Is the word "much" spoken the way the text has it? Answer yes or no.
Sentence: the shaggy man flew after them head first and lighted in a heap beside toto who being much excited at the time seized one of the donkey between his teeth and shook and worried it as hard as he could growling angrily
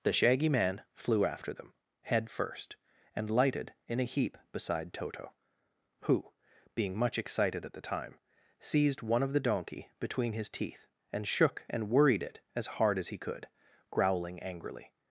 yes